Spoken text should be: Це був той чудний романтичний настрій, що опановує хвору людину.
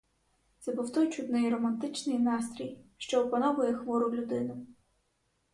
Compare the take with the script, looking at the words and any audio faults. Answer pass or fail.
pass